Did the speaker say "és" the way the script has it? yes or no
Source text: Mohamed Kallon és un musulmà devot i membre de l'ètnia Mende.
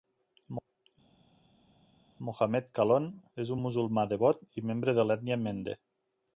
yes